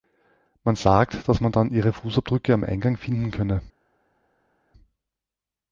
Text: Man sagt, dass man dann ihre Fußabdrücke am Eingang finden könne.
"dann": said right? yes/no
yes